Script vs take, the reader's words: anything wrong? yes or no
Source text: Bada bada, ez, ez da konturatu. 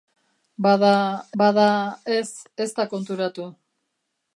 no